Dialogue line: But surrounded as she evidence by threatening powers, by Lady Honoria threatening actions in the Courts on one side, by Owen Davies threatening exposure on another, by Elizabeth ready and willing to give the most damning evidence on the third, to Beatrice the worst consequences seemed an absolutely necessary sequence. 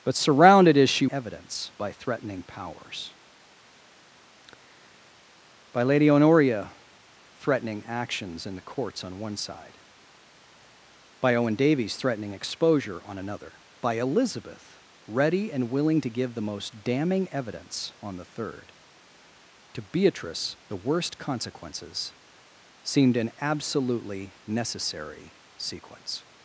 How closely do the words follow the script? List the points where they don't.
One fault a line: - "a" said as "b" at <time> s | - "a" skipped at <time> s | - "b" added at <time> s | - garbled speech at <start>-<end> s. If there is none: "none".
none